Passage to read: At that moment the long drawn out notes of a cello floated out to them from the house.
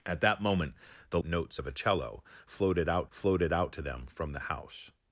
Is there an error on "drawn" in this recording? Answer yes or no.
yes